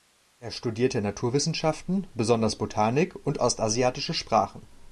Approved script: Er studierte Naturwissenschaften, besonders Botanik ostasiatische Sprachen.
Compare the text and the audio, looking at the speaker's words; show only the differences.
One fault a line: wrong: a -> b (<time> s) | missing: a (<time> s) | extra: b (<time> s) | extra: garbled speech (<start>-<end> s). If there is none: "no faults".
extra: und (3.2 s)